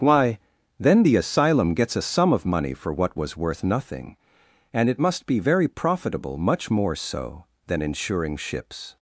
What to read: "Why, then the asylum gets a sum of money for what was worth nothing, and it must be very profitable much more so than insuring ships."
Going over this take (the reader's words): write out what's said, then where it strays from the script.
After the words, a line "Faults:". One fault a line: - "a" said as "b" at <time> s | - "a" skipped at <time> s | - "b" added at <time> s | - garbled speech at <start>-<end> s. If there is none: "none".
"Why, then the asylum gets a sum of money for what was worth nothing, and it must be very profitable much more so than insuring ships."
Faults:
none